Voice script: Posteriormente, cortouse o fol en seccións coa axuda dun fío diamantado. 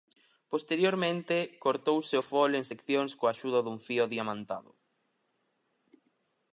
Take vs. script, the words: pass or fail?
pass